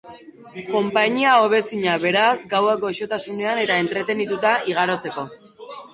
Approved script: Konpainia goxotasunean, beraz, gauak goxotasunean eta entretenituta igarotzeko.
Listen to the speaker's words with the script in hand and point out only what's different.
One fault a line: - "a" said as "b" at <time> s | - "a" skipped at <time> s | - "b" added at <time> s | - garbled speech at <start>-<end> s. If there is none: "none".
- "goxotasunean" said as "hobezina" at 1.4 s